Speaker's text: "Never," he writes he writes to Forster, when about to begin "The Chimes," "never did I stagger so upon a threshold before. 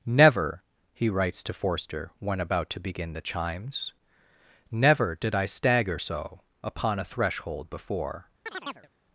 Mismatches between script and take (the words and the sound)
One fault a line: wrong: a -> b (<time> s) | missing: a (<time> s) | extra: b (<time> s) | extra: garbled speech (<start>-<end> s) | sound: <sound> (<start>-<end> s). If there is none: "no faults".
missing: he writes (1.4 s)
sound: chirp (8.5-8.9 s)